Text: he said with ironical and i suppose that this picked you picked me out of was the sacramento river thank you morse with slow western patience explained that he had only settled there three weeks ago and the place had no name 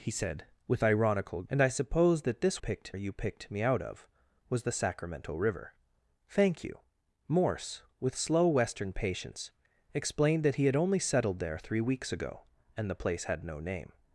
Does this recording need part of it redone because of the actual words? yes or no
no